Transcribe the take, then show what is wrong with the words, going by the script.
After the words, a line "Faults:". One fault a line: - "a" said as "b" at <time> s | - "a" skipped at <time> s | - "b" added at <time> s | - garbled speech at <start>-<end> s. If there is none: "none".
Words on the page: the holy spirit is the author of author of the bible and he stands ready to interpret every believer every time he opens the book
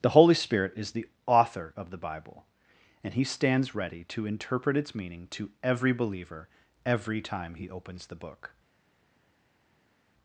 the holy spirit is the author of the bible and he stands ready to interpret its meaning to every believer every time he opens the book
Faults:
- "author of" skipped at 1.9 s
- "its meaning to" added at 4.8 s